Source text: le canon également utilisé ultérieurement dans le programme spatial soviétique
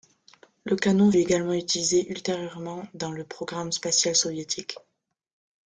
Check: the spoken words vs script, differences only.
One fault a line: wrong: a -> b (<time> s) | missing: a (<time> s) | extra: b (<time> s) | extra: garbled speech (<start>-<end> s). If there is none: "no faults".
no faults